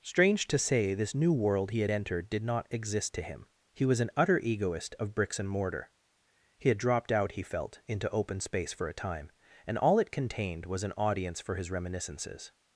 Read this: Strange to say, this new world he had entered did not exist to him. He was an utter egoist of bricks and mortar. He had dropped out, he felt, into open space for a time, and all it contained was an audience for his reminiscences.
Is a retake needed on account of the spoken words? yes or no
no